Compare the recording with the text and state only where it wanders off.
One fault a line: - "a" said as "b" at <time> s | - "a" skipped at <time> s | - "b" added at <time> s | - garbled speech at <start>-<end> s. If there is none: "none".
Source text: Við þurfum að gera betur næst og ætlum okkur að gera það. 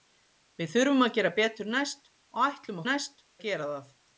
- "okkur" said as "næst" at 2.9 s